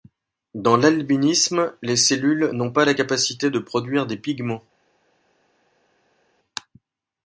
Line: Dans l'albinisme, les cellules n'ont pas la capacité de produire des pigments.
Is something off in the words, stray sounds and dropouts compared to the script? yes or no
no